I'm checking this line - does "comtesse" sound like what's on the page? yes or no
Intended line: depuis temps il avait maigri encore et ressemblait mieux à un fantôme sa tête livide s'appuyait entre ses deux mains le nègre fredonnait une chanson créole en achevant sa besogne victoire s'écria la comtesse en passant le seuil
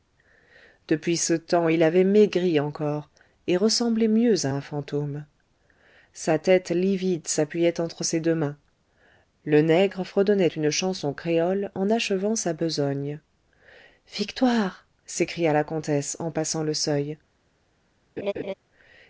yes